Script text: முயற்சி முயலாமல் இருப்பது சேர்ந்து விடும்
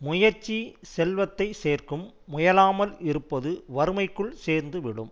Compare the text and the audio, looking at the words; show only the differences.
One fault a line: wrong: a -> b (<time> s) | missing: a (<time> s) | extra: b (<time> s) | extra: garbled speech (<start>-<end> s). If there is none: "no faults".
extra: செல்வத்தை சேர்க்கும் (0.9 s)
extra: வறுமைக்குள் (3.8 s)